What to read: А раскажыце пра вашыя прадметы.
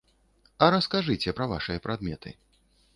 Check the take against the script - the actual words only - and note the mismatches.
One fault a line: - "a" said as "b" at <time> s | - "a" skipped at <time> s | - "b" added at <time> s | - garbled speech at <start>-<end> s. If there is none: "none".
none